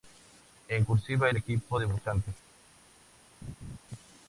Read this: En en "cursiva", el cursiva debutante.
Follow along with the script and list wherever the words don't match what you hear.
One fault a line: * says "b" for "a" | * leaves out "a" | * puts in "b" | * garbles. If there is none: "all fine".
* leaves out "en"
* says "equipo" for "cursiva"